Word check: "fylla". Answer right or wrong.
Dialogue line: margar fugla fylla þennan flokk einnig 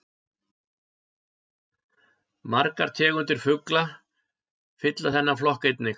right